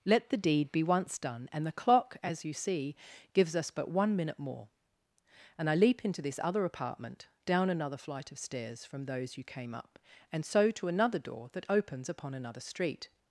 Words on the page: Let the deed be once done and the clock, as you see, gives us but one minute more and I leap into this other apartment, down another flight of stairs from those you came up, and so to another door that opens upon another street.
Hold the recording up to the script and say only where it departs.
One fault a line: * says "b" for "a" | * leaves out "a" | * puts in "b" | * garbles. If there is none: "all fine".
all fine